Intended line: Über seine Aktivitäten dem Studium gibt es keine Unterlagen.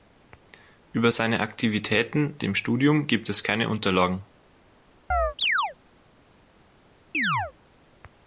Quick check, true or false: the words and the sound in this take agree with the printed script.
false